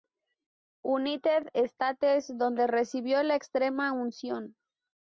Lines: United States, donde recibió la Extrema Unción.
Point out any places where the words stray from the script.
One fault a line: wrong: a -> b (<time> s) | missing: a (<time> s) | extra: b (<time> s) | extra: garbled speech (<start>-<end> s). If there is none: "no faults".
no faults